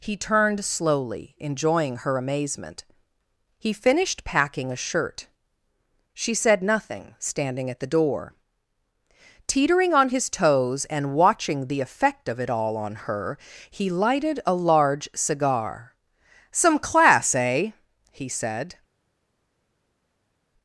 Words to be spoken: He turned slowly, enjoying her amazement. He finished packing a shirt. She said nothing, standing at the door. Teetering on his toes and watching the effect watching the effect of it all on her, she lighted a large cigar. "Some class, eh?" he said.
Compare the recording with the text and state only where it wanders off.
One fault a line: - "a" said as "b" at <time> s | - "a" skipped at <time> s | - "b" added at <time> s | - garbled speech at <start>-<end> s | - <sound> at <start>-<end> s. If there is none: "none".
- "watching the effect" skipped at 12.3 s
- "she" said as "he" at 13.7 s